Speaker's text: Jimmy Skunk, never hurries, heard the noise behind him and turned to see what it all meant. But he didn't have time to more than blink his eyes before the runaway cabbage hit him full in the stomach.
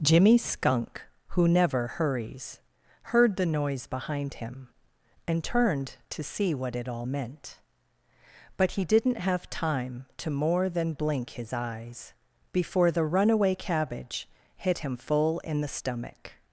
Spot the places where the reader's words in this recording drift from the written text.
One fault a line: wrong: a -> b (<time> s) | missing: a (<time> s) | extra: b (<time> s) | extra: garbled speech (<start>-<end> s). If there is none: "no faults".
extra: who (1.3 s)